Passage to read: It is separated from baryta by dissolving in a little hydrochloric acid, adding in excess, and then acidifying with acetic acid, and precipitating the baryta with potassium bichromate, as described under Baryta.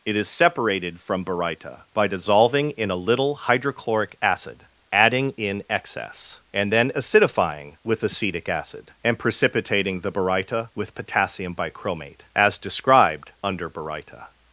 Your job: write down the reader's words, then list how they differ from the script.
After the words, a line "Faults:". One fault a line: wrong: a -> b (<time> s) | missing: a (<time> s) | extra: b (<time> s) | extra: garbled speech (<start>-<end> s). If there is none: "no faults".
It is separated from baryta by dissolving in a little hydrochloric acid, adding in excess, and then acidifying with acetic acid, and precipitating the baryta with potassium bichromate, as described under Baryta.
Faults:
no faults